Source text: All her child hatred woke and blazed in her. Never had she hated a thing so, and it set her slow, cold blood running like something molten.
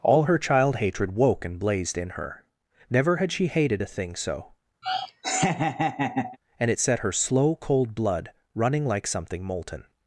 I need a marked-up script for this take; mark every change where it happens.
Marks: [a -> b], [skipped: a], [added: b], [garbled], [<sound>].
All her child hatred woke and blazed in her. Never had she hated a thing so, [laugh] and it set her slow, cold blood running like something molten.